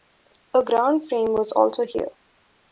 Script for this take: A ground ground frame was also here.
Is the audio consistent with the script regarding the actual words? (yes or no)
no